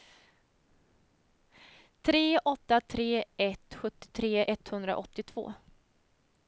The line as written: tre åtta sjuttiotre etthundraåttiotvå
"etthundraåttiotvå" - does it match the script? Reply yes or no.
yes